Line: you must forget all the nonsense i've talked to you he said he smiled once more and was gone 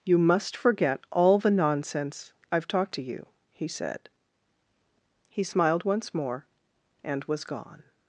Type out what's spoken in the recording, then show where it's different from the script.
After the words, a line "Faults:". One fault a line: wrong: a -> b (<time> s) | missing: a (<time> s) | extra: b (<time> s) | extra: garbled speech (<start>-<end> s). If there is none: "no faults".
you must forget all the nonsense i've talked to you he said he smiled once more and was gone
Faults:
no faults